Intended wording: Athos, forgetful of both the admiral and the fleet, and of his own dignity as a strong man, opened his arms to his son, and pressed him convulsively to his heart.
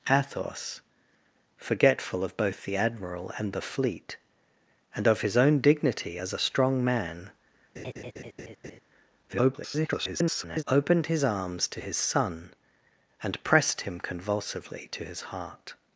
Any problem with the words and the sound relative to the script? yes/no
yes